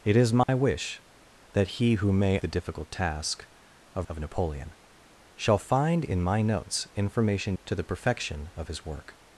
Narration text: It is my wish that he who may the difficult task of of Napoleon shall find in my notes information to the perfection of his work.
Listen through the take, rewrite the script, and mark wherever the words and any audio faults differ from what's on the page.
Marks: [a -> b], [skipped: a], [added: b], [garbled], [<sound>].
It is my [dropout] wish that he who may the difficult task of of Napoleon shall find in my notes information to the perfection of his work.